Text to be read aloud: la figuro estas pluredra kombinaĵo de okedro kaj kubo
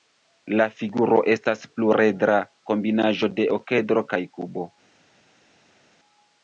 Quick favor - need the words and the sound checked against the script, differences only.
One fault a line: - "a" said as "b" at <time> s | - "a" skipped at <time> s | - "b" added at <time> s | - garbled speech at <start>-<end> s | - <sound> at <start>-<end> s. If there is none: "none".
none